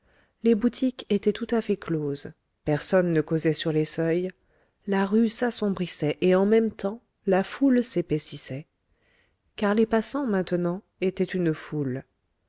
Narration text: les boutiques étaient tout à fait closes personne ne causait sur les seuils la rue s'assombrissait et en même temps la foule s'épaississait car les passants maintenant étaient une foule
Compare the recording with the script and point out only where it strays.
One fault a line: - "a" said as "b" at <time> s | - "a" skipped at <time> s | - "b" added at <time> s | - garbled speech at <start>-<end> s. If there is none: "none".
none